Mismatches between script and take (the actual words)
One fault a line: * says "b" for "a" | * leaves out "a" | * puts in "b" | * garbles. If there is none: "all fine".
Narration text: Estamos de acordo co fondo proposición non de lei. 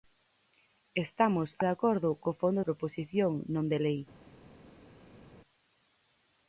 all fine